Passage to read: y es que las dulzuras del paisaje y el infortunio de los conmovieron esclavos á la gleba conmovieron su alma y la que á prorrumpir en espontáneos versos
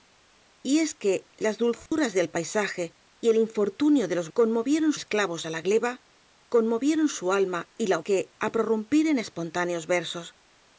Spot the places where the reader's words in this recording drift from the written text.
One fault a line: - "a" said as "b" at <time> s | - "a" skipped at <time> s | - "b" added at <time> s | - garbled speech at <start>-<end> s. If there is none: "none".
none